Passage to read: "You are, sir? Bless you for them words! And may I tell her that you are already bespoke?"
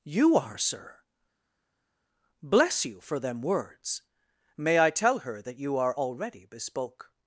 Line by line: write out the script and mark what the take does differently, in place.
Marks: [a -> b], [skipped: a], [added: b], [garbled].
"You are, sir? Bless you for them words! [skipped: And] may I tell her that you are already bespoke?"